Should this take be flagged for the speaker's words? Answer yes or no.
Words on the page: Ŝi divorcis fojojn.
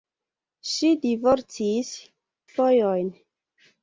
no